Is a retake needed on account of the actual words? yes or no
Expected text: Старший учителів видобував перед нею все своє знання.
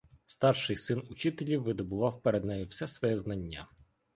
yes